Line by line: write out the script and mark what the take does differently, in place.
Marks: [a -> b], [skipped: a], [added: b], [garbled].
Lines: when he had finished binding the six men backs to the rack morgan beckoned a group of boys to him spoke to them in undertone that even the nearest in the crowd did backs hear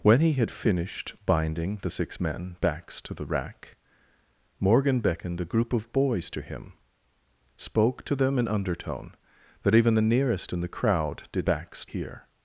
when he had finished binding the six men backs to the rack morgan beckoned a group of boys to him spoke to them in undertone that even the nearest in the crowd did backs hear